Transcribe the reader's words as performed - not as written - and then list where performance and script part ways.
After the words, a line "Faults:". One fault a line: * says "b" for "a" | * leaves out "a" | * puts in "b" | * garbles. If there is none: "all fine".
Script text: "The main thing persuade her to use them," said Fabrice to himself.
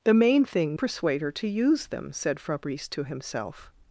"The main thing persuade her to use them," said Fabrice to himself.
Faults:
all fine